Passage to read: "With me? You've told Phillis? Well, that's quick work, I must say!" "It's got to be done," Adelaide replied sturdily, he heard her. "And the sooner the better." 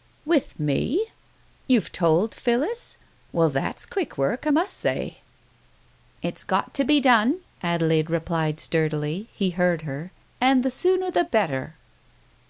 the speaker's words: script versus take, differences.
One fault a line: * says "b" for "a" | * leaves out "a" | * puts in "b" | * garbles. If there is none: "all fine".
all fine